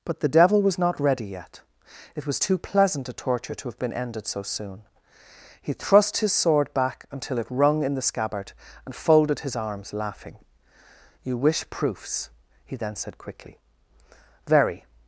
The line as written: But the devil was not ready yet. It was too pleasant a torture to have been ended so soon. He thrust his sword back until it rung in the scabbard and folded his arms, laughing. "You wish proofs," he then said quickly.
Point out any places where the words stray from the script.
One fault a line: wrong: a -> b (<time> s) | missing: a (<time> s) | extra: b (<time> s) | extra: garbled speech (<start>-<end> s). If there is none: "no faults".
extra: Very (14.5 s)